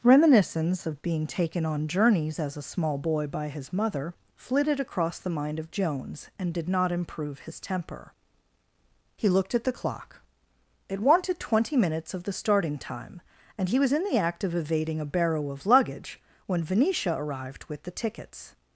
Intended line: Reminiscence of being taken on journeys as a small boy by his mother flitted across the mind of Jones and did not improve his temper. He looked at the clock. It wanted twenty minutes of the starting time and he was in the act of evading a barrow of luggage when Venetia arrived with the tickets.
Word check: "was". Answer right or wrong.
right